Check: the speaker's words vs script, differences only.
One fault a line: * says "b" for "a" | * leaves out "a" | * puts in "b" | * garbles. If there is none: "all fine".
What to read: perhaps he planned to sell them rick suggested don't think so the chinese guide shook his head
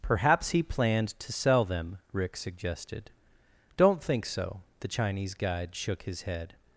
all fine